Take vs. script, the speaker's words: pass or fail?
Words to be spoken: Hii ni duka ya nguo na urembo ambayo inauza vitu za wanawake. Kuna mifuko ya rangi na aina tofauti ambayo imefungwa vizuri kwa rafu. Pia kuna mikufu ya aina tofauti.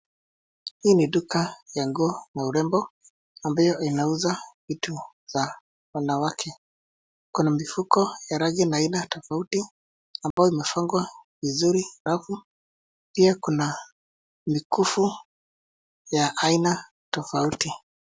fail